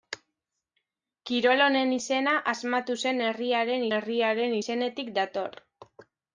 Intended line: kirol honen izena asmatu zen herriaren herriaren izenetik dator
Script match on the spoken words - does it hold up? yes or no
yes